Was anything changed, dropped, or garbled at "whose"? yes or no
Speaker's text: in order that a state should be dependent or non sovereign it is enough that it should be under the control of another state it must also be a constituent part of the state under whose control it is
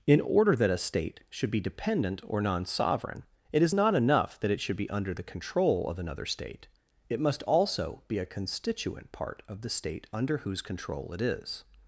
no